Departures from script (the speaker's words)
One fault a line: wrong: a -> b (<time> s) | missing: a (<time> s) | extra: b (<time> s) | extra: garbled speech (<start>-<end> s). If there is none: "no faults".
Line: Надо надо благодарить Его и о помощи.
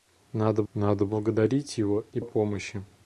no faults